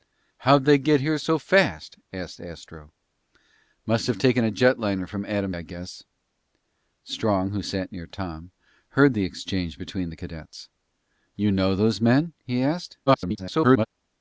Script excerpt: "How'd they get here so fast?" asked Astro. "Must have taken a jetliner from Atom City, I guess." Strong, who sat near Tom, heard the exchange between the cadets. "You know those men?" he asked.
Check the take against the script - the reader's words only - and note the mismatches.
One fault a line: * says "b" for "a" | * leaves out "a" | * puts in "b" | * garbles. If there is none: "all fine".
* leaves out "City"
* garbles